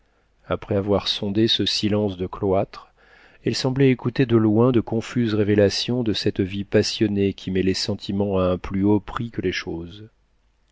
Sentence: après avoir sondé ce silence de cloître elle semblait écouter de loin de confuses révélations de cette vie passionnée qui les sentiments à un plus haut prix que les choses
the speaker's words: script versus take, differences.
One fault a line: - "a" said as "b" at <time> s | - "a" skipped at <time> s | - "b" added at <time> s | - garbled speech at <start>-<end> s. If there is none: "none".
- "met" added at 7.5 s